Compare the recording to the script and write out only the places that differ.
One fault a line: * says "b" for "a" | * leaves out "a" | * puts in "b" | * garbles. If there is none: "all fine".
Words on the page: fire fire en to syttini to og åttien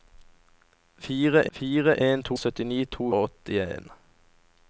all fine